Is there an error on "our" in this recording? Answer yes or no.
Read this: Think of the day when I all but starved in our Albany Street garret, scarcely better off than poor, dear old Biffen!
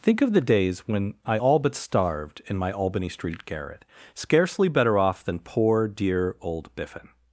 yes